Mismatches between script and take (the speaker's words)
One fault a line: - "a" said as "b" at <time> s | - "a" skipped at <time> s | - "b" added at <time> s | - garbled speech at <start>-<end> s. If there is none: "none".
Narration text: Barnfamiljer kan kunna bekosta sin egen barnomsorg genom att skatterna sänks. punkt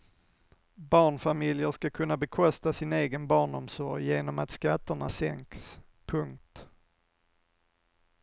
- "kan" said as "ska" at 1.7 s